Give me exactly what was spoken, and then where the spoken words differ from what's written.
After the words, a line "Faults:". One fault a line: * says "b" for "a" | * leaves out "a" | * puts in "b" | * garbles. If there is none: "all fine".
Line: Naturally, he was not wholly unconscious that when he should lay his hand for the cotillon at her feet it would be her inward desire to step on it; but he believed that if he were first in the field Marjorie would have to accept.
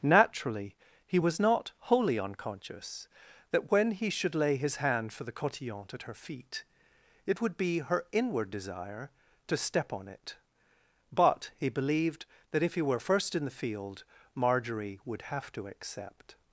Naturally, he was not wholly unconscious that when he should lay his hand for the cotillon at her feet it would be her inward desire to step on it; but he believed that if he were first in the field Marjorie would have to accept.
Faults:
all fine